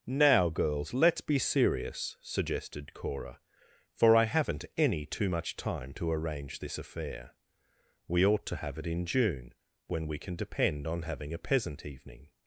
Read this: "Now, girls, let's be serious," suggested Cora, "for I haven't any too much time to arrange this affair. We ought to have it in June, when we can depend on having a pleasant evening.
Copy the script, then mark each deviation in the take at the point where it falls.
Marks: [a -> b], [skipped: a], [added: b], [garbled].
"Now, girls, let's be serious," suggested Cora, "for I haven't any too much time to arrange this affair. We ought to have it in June, when we can depend on having a [pleasant -> peasant] evening.